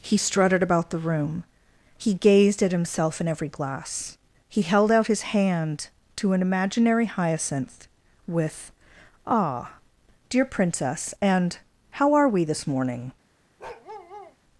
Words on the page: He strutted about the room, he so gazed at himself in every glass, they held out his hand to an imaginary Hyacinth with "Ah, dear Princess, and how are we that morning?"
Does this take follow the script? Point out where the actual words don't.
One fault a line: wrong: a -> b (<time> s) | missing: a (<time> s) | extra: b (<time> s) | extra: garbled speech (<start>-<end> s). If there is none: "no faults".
missing: so (2.1 s)
wrong: they -> he (4.5 s)
wrong: that -> this (12.4 s)